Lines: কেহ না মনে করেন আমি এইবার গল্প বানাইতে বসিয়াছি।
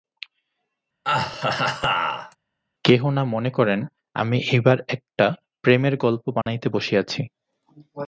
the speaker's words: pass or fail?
fail